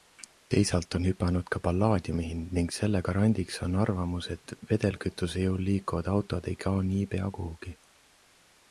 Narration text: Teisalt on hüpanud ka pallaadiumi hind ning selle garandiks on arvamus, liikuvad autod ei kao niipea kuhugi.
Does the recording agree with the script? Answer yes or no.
no